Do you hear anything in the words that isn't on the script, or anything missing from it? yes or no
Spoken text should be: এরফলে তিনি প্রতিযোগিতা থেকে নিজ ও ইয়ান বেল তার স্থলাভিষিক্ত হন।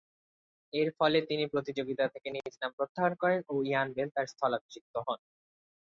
yes